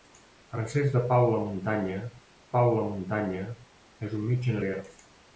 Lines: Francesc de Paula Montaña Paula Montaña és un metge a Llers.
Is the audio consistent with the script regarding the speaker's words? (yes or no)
yes